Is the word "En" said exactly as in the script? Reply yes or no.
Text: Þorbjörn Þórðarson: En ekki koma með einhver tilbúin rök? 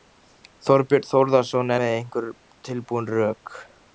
no